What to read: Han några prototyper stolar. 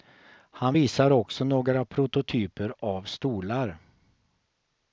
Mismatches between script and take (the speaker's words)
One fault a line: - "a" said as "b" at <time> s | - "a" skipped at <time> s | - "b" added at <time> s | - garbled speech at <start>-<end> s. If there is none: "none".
- "visar också" added at 0.7 s
- "av" added at 2.8 s